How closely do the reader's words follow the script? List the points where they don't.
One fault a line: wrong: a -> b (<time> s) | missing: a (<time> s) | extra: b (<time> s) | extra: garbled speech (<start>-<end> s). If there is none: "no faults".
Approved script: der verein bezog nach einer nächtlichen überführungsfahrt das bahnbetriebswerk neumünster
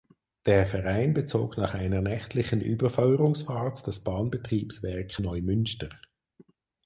no faults